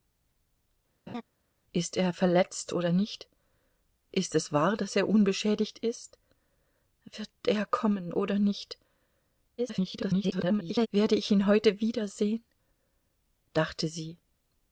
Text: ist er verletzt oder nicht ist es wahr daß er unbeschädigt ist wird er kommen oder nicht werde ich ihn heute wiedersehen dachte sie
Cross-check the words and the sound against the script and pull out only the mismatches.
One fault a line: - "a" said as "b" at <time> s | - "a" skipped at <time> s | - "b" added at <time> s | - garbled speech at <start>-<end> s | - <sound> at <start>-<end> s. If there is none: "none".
- laugh at 1.1-1.2 s
- garbled speech at 9.6-10.9 s